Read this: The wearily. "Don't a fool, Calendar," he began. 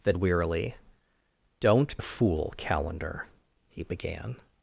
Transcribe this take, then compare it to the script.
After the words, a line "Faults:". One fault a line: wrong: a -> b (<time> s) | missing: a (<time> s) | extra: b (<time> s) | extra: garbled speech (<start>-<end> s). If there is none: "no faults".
The wearily. "Don't a fool, Calendar," he began.
Faults:
no faults